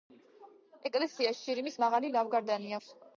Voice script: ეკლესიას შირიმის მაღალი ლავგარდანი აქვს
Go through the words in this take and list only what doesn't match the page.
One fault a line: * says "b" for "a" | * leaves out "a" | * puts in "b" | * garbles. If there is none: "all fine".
all fine